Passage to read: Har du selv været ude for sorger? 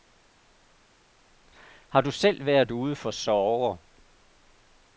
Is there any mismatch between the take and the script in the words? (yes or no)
no